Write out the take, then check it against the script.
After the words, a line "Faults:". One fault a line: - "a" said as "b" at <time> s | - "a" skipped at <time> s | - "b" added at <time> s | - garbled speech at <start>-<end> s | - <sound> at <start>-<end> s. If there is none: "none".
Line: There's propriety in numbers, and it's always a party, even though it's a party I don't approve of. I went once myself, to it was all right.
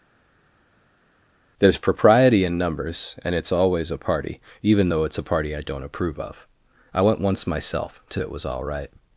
There's propriety in numbers, and it's always a party, even though it's a party I don't approve of. I went once myself, to it was all right.
Faults:
none